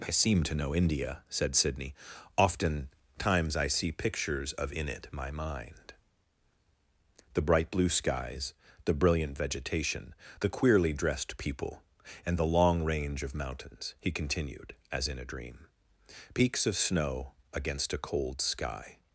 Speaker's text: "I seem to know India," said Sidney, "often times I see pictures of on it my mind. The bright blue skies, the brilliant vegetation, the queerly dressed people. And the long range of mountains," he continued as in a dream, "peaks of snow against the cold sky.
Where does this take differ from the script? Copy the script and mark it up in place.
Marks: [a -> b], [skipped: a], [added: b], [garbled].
"I seem to know India," said Sidney, "often times I see pictures of [on -> in] it my mind. The bright blue skies, the brilliant vegetation, the queerly dressed people. And the long range of mountains," he continued as in a dream, "peaks of snow against [the -> a] cold sky.